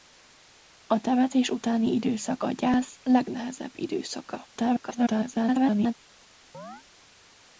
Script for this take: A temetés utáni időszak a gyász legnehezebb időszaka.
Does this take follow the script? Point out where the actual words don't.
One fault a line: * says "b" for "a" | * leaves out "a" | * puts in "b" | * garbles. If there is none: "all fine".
* garbles